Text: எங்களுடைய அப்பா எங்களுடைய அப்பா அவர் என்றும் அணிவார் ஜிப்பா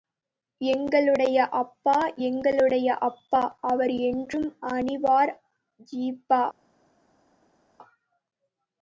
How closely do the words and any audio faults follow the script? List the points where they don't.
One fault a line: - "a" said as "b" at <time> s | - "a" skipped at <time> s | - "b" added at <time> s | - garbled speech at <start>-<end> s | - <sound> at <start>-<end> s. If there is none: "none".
none